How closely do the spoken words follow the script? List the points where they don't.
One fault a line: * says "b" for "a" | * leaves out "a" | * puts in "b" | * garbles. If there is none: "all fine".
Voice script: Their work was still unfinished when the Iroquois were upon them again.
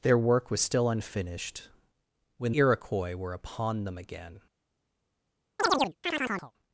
* leaves out "the"